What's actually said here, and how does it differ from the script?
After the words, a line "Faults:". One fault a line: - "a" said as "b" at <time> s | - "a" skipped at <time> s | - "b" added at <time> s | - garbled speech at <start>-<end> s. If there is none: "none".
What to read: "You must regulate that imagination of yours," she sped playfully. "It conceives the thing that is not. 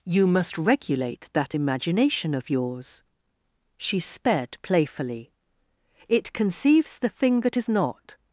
"You must regulate that imagination of yours," she sped playfully. "It conceives the thing that is not.
Faults:
none